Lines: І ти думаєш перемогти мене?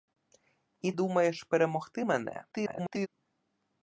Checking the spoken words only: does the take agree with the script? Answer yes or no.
no